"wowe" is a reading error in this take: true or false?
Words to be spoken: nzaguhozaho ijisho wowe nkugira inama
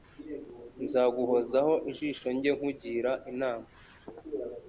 true